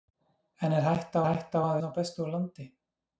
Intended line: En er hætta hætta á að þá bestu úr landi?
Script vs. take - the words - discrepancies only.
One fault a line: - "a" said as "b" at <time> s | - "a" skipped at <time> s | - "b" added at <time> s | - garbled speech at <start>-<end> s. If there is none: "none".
none